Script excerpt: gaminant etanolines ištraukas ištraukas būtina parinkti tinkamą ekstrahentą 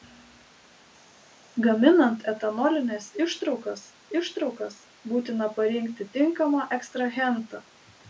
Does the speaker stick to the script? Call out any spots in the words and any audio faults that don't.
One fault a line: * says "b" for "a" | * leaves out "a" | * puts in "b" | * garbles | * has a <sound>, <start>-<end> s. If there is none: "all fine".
all fine